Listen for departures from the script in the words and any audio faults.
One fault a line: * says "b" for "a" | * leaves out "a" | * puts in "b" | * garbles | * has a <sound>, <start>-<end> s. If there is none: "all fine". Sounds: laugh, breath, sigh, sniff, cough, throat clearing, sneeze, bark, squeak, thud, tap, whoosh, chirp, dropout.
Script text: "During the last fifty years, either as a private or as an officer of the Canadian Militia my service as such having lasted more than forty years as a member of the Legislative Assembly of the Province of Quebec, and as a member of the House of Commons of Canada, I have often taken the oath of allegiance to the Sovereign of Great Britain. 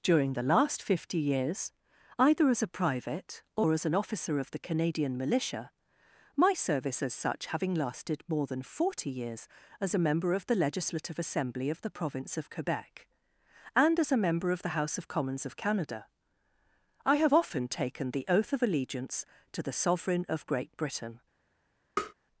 * has a tap, 22.0-22.1 s